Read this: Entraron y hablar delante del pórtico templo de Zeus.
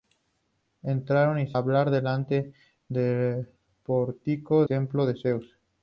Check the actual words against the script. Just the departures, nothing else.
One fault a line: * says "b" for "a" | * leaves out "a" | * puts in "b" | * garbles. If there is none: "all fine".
all fine